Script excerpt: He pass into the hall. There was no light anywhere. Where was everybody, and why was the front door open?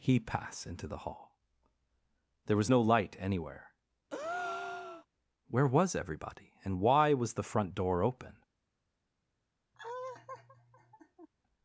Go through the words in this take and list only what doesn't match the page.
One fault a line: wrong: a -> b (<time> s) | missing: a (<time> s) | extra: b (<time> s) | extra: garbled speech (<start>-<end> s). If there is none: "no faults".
no faults